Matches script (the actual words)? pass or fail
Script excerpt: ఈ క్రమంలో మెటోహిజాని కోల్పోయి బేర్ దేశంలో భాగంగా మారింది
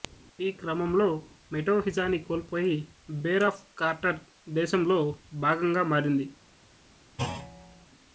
fail